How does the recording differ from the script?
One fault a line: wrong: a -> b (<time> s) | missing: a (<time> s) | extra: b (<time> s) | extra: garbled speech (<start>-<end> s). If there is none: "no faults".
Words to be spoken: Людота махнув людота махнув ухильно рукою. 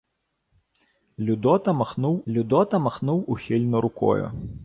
no faults